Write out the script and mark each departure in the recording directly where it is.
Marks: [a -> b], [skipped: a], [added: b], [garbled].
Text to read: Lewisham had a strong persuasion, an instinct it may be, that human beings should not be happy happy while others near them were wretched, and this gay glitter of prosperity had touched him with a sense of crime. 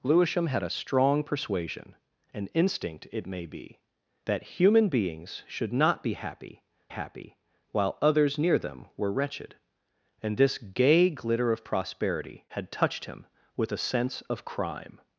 Lewisham had a strong persuasion, an instinct it may be, that human beings should not be happy happy while others near them were wretched, and this gay glitter of prosperity had touched him with a sense of crime.